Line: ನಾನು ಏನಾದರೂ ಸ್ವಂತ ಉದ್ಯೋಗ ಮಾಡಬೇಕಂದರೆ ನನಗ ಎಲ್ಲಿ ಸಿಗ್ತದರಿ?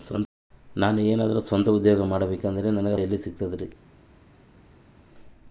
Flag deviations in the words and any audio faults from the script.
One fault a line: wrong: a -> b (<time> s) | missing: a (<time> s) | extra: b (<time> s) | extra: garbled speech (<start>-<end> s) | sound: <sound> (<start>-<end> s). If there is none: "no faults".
no faults